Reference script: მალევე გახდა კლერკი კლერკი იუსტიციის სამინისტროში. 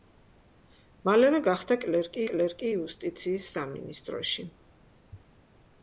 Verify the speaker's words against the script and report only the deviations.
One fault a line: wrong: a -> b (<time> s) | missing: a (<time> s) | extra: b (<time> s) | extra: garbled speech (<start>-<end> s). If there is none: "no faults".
no faults